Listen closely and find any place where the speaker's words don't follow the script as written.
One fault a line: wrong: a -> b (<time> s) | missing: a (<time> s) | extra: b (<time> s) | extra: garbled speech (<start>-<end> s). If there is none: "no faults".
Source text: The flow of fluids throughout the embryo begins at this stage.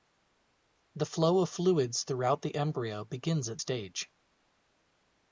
missing: this (3.6 s)